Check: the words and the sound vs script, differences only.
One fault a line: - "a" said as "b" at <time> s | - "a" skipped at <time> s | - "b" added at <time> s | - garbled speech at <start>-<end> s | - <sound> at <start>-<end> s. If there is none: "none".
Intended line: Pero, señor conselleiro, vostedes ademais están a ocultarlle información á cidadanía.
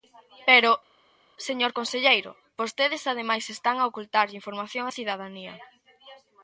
none